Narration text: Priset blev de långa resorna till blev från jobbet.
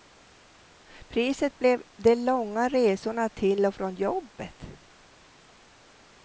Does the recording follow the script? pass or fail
fail